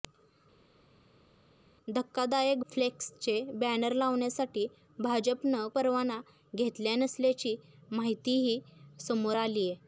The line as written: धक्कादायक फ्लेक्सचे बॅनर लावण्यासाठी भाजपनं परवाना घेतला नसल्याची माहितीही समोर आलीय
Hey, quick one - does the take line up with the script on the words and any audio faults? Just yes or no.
yes